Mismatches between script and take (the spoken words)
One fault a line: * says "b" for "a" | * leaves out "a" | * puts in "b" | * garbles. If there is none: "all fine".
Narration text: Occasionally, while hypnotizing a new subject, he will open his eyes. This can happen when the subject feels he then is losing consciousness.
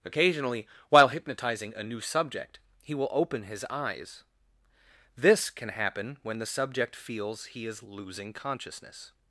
* leaves out "then"